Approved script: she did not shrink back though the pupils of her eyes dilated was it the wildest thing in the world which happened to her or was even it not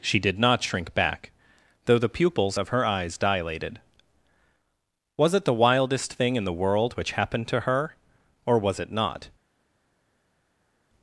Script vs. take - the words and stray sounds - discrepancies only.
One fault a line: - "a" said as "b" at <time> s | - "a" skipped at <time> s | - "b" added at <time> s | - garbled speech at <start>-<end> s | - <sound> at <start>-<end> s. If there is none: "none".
- "even" skipped at 8.8 s